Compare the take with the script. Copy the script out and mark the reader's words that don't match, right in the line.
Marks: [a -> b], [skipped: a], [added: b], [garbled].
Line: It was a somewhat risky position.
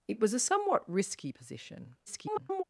It was a somewhat risky position. [garbled]